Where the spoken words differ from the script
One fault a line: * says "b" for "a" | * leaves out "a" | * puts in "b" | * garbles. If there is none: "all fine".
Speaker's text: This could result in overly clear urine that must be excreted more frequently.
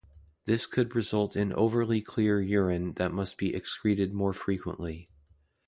all fine